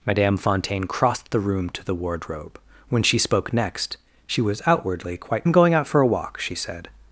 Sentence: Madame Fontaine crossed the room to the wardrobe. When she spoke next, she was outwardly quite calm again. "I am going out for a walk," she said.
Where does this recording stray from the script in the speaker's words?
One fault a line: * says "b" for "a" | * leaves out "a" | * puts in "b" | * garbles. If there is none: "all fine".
* leaves out "calm again I"